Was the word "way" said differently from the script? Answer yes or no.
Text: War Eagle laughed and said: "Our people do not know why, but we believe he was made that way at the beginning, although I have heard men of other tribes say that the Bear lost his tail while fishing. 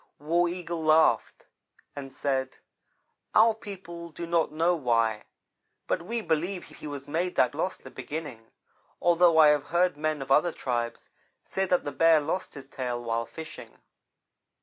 yes